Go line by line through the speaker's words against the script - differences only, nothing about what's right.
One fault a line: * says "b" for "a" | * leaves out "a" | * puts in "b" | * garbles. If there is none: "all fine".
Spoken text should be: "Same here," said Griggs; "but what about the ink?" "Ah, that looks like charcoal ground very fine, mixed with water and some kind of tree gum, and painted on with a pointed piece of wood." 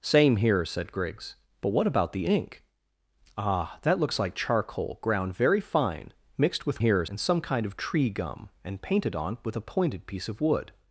* says "here" for "water"